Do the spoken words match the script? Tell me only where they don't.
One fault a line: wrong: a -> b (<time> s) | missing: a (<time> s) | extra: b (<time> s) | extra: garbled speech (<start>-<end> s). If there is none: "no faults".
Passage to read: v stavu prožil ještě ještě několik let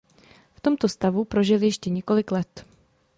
extra: tomto (0.6 s)
missing: ještě (1.9 s)